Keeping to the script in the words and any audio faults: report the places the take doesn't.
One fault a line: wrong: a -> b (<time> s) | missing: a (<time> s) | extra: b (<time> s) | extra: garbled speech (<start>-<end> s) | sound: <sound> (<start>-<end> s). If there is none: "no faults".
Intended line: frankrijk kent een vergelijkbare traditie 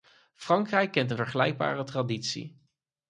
no faults